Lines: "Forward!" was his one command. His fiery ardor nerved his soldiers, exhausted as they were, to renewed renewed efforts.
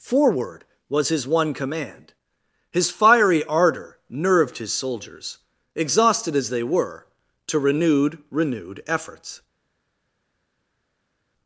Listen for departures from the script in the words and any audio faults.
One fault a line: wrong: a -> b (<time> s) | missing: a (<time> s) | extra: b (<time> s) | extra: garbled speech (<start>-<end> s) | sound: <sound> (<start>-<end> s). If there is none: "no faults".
no faults